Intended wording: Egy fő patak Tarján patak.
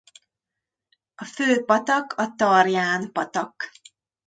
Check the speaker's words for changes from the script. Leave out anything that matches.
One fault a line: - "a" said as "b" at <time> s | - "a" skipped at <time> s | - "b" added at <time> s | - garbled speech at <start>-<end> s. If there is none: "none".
- "Egy" said as "A" at 1.1 s
- "a" added at 2.1 s